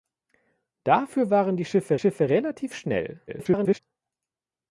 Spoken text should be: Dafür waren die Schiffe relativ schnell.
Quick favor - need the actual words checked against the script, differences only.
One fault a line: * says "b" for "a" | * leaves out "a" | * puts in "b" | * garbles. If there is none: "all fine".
* puts in "Schiffe"
* garbles